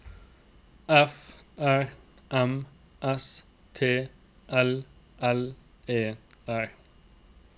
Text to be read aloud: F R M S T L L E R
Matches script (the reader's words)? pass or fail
pass